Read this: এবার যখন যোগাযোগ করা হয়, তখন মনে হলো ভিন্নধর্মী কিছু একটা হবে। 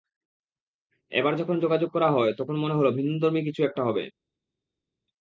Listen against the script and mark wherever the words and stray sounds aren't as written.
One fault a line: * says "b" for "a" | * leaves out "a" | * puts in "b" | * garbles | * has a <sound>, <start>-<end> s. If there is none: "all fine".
all fine